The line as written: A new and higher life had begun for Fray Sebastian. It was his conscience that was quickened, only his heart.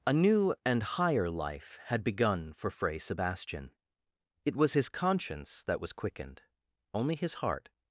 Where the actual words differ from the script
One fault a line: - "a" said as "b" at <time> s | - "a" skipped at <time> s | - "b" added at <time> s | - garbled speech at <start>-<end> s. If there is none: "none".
none